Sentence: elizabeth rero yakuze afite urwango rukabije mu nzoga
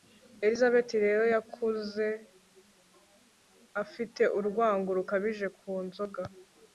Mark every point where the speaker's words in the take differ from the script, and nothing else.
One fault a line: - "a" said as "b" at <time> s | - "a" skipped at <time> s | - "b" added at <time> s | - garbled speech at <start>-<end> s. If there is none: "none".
- "mu" said as "ku" at 5.6 s